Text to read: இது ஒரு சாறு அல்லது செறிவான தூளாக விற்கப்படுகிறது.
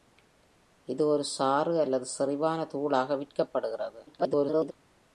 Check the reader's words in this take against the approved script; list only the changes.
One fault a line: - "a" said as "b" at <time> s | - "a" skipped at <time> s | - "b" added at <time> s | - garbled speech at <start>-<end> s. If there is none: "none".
- garbled speech at 4.1-4.7 s